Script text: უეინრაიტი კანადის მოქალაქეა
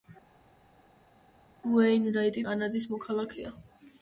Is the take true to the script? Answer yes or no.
yes